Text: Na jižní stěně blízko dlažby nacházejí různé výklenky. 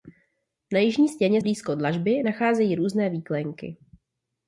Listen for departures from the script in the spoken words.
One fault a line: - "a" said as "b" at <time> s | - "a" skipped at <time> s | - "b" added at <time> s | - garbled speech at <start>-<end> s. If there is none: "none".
none